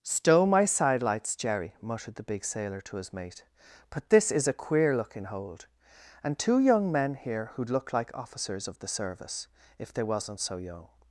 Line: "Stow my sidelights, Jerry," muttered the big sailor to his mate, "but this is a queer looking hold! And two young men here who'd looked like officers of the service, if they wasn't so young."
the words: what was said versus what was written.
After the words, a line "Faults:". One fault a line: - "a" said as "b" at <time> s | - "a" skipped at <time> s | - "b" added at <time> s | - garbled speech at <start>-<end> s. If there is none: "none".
"Stow my sidelights, Jerry," muttered the big sailor to his mate, "but this is a queer looking hold! And two young men here who'd look like officers of the service, if they wasn't so young."
Faults:
- "looked" said as "look" at 7.7 s